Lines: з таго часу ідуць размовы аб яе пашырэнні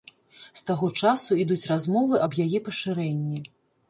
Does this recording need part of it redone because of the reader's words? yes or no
no